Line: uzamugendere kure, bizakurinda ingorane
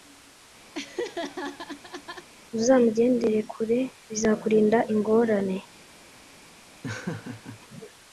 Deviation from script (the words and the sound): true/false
true